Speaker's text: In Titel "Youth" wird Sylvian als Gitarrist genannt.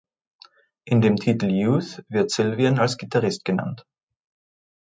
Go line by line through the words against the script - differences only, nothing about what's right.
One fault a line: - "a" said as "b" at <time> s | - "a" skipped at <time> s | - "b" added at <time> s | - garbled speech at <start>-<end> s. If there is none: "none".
- "dem" added at 1.0 s